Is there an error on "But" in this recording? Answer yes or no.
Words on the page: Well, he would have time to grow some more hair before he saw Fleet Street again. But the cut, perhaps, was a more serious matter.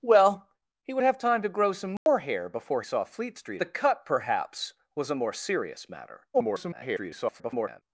yes